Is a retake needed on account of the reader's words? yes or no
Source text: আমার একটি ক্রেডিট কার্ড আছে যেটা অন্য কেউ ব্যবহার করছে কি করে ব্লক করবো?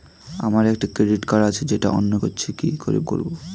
yes